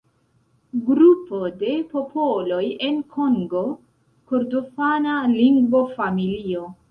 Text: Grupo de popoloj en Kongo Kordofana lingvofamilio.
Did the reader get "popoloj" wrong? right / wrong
right